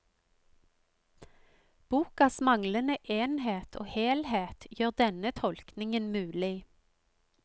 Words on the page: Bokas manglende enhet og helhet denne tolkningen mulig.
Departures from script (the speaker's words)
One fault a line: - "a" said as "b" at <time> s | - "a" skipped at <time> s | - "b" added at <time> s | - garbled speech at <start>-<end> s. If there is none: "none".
- "gjør" added at 4.8 s